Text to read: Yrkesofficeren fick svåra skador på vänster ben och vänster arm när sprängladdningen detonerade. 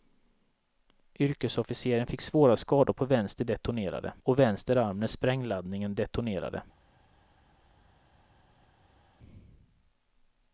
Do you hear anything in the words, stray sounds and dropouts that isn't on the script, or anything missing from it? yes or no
yes